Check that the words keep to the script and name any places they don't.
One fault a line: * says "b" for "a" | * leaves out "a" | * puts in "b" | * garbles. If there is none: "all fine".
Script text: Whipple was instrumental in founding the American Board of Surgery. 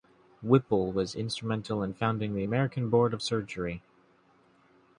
all fine